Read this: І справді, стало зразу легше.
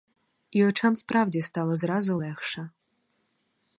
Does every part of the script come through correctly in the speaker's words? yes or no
no